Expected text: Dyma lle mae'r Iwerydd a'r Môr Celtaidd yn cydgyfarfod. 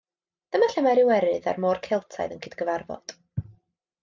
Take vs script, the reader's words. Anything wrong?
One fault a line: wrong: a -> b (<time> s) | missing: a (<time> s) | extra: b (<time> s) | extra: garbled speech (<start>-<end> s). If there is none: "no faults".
no faults